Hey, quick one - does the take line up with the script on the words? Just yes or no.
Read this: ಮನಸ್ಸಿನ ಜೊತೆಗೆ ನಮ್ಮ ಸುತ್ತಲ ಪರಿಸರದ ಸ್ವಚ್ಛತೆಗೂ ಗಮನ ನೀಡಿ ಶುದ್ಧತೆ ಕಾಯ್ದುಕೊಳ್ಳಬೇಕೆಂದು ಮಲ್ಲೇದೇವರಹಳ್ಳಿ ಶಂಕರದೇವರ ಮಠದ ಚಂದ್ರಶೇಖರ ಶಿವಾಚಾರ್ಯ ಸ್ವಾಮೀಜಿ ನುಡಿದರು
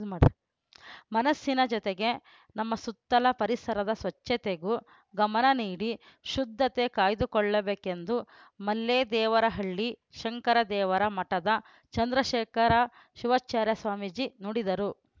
yes